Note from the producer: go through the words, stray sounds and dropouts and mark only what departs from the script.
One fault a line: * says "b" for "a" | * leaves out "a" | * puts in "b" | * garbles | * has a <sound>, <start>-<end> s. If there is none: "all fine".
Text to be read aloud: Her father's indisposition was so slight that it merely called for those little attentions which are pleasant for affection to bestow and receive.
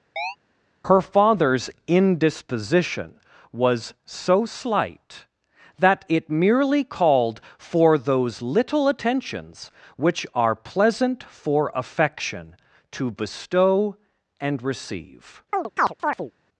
* has a chirp, 0.2-0.4 s
* has a chirp, 15.5-16.3 s